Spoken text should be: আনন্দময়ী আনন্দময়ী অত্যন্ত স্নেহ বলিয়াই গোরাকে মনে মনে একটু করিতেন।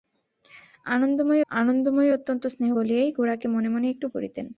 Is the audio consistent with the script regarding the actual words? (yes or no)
yes